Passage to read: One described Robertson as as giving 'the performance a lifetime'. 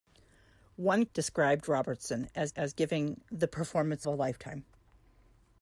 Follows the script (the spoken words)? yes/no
yes